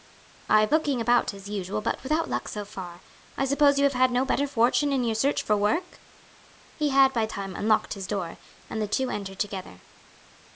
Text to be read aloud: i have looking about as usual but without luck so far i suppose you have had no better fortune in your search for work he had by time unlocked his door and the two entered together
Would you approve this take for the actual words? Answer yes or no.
yes